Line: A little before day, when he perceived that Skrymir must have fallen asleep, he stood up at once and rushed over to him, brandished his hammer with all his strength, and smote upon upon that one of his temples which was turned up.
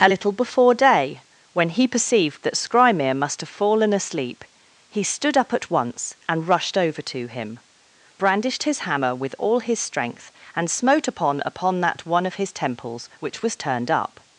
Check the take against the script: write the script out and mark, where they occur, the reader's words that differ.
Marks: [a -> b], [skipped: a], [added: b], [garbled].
A little before day, when he perceived that Skrymir must have fallen asleep, he stood up at once and rushed over to him, brandished his hammer with all his strength, and smote upon upon that one of his temples which was turned up.